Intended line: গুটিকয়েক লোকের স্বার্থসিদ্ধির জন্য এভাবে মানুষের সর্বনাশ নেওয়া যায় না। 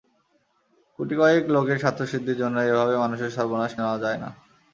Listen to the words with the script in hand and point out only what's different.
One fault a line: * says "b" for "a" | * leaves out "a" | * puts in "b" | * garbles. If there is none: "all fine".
all fine